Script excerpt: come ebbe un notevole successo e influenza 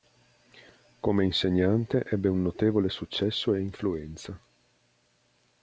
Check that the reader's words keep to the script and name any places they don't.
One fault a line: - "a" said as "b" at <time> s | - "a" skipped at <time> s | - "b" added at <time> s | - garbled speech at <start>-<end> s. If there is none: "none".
- "insegnante" added at 1.2 s